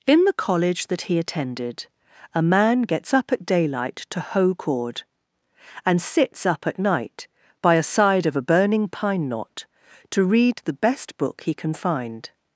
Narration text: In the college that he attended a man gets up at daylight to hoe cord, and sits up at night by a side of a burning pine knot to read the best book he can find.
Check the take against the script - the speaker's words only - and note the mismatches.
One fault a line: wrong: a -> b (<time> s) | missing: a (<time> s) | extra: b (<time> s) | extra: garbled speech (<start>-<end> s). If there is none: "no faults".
no faults